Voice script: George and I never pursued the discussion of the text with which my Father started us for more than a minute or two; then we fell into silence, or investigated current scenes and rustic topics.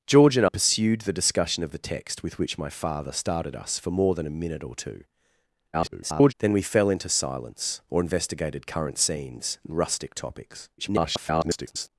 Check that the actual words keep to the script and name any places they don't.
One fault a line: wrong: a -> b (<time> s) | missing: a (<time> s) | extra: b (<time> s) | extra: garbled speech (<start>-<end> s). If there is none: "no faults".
missing: I never (0.5 s)
extra: garbled speech (5.7-6.3 s)
extra: garbled speech (10.8-11.9 s)